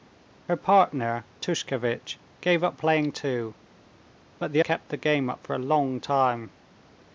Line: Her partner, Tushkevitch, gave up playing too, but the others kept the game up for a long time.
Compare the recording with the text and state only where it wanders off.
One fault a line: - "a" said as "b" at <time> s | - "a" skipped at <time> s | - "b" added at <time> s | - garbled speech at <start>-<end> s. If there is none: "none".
- "others" skipped at 4.6 s